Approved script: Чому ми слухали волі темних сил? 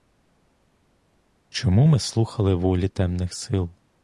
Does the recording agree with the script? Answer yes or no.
yes